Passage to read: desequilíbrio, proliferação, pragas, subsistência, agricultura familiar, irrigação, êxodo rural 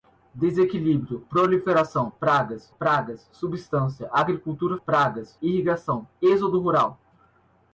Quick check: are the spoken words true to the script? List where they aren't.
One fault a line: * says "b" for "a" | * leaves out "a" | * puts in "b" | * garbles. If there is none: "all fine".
* puts in "pragas"
* says "pragas" for "familiar"